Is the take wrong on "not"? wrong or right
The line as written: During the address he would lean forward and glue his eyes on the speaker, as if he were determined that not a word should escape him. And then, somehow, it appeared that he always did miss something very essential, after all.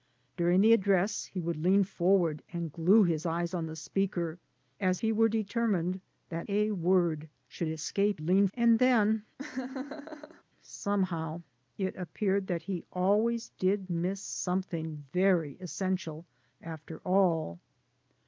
wrong